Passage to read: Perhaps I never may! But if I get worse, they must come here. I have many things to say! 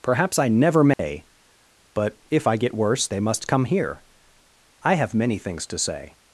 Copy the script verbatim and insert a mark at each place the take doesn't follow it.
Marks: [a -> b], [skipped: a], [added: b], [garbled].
Perhaps I never may! But if I get worse, they must come here. I have many things to say!